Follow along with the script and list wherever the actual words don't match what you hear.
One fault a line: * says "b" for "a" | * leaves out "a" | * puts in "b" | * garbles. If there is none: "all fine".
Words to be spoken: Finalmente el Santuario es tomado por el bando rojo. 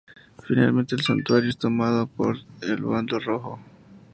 all fine